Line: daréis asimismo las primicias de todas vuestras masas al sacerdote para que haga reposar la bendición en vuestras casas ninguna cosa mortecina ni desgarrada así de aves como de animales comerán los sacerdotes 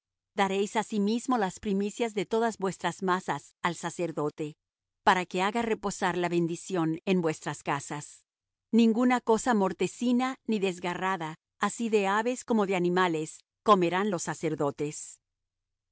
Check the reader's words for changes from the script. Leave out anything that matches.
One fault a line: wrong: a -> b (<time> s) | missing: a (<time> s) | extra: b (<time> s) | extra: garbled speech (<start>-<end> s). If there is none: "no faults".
no faults